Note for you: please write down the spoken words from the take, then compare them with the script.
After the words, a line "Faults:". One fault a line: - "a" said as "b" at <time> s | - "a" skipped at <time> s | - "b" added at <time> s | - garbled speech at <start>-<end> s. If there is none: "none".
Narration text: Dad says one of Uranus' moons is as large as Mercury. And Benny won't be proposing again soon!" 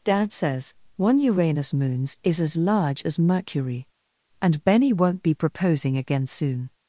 Dad says one Uranus' moons is as large as Mercury. And Benny won't be proposing again soon!"
Faults:
- "of" skipped at 1.2 s